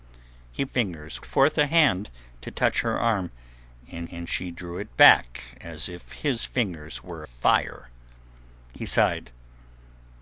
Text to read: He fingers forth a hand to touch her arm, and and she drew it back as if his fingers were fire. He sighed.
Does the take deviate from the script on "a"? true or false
false